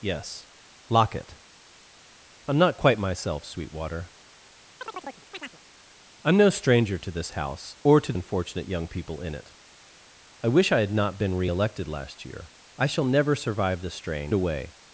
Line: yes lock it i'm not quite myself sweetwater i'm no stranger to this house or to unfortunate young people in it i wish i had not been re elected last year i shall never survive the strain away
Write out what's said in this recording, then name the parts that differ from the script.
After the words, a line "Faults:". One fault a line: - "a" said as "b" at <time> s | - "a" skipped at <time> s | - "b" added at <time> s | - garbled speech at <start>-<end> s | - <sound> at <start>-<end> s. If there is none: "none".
yes lock it i'm not quite myself sweetwater i'm no stranger to this house or to unfortunate young people in it i wish i had not been re elected last year i shall never survive the strain away
Faults:
- chirp at 4.8-5.6 s